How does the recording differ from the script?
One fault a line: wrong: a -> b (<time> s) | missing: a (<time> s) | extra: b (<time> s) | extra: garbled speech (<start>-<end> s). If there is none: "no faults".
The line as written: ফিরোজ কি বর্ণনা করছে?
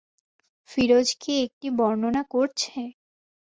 extra: একটি (1.4 s)